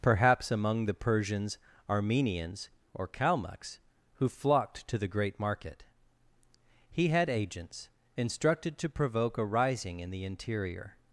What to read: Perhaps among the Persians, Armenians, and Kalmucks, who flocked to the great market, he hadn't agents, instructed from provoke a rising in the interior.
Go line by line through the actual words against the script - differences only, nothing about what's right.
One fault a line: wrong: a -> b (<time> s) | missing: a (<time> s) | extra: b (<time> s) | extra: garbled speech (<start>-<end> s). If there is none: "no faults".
wrong: and -> or (2.9 s)
wrong: hadn't -> had (7.1 s)
wrong: from -> to (8.8 s)